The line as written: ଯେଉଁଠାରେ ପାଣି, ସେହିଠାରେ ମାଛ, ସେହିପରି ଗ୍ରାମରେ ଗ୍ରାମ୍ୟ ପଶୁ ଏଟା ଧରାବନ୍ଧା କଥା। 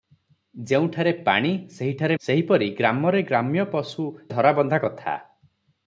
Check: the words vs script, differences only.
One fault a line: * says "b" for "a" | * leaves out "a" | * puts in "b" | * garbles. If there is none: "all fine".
* leaves out "ମାଛ"
* leaves out "ଏଟା"